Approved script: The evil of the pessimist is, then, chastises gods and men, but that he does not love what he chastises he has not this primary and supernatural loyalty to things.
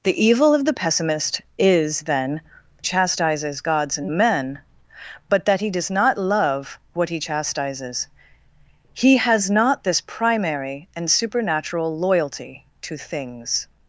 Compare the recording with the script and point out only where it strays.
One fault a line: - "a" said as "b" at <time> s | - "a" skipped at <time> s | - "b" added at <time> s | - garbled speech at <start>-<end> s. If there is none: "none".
none